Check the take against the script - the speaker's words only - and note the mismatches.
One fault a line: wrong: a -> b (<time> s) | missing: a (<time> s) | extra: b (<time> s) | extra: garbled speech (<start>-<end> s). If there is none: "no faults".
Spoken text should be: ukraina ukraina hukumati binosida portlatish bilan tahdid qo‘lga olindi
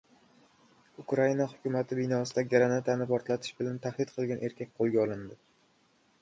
missing: ukraina (1.4 s)
extra: granatani (2.5 s)
extra: qilgan erkak (4.2 s)